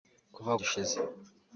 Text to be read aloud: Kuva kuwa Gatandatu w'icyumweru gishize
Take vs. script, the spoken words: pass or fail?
fail